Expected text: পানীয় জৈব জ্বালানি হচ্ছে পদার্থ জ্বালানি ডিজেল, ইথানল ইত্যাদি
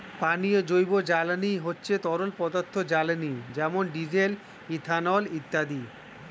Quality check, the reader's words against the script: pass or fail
fail